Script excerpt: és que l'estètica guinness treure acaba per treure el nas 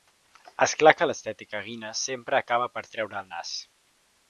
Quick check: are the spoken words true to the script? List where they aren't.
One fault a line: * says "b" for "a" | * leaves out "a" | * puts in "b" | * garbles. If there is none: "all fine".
* puts in "clar"
* says "sempre" for "treure"